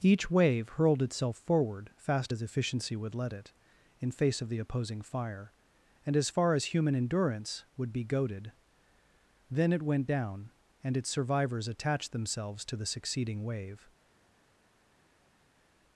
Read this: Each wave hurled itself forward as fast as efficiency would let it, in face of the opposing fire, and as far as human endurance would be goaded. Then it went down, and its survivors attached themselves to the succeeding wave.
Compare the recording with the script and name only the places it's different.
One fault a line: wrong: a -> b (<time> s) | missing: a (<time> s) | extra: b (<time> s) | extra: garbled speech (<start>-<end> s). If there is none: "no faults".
missing: as (1.9 s)